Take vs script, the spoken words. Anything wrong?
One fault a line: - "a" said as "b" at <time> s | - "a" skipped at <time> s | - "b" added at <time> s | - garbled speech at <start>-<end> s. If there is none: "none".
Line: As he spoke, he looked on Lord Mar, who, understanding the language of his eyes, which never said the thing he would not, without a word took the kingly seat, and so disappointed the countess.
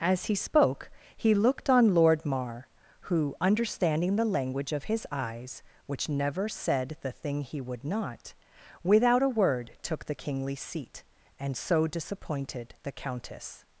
none